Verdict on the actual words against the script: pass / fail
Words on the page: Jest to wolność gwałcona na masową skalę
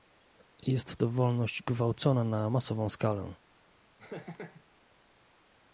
pass